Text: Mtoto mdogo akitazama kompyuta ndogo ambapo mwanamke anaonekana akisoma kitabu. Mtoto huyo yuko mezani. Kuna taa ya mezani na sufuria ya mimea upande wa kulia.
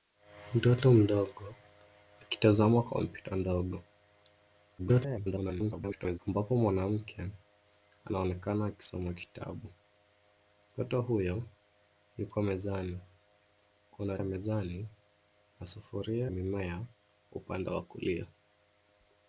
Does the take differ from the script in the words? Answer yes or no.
yes